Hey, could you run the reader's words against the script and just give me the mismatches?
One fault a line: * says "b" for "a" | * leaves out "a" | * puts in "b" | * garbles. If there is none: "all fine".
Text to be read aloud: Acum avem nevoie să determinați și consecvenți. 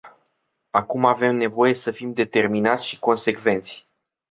* puts in "fim"